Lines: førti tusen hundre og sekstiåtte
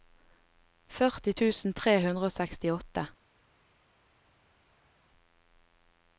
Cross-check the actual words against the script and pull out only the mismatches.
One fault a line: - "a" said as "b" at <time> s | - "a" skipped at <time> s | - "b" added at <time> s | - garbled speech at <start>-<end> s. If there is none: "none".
- "tre" added at 1.8 s